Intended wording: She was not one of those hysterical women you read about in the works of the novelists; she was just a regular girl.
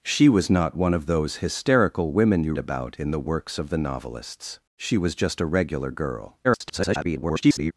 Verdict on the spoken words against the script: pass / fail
fail